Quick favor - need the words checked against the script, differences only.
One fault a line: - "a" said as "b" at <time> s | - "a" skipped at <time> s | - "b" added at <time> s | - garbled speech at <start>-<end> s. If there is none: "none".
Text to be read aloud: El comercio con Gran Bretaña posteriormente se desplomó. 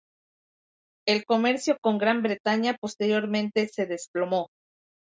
none